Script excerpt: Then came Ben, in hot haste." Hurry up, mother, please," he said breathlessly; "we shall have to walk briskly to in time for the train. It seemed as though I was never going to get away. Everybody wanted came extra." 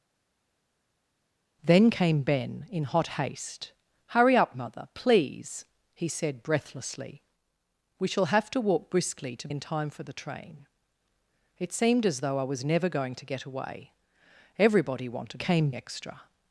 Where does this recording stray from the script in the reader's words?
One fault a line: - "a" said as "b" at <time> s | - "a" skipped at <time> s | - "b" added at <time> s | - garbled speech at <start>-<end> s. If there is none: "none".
none